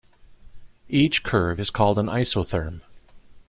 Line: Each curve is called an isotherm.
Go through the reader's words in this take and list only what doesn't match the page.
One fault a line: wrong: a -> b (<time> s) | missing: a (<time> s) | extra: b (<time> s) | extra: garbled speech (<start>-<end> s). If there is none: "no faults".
no faults